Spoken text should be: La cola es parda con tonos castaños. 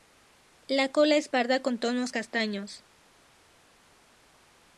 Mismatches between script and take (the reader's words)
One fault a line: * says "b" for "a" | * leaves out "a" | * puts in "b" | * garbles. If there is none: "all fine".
all fine